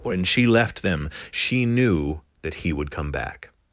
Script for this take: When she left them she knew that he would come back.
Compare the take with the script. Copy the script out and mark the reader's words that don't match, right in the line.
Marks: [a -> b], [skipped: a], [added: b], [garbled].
When she left them she knew that he would come back.